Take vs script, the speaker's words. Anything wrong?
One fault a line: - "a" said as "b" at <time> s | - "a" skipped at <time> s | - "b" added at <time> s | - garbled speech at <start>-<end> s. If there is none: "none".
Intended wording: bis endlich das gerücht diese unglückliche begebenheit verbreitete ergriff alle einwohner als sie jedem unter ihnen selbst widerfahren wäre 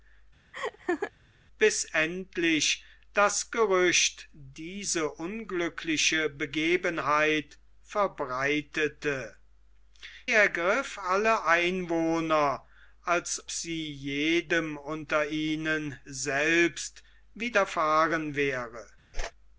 none